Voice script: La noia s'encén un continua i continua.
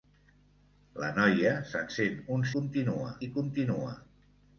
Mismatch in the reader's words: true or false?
false